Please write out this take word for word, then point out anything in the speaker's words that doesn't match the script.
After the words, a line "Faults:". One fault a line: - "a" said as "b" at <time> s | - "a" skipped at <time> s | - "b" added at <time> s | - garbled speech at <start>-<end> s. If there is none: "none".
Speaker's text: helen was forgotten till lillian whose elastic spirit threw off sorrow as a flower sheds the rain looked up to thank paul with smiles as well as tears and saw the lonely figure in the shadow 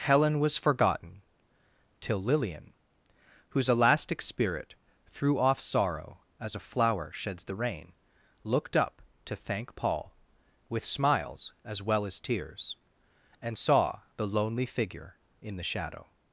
helen was forgotten till lillian whose elastic spirit threw off sorrow as a flower sheds the rain looked up to thank paul with smiles as well as tears and saw the lonely figure in the shadow
Faults:
none